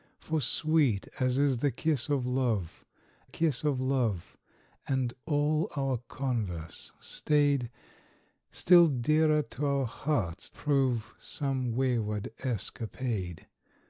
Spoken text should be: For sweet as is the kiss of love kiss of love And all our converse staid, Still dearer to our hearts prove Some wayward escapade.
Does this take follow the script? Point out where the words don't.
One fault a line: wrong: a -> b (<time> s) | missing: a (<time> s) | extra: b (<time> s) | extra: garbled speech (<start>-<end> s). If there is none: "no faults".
no faults